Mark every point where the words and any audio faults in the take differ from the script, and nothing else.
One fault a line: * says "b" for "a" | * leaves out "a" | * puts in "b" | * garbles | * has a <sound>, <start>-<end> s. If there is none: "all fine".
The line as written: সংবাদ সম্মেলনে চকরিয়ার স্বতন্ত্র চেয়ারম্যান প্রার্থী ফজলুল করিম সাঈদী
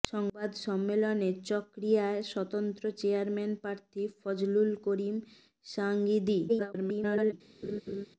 * garbles
* has a laugh, 7.6-8.1 s